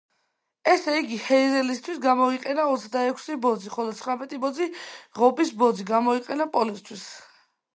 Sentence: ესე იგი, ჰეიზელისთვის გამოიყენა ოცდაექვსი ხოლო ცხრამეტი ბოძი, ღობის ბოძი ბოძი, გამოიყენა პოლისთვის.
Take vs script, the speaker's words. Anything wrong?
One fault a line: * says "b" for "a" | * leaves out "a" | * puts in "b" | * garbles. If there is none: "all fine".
* puts in "ბოძი"
* leaves out "ბოძი"